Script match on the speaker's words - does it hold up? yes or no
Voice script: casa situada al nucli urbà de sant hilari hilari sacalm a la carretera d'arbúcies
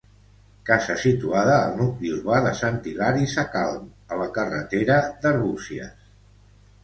no